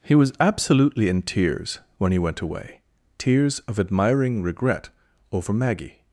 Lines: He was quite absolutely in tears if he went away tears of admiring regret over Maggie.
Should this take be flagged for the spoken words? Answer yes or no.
yes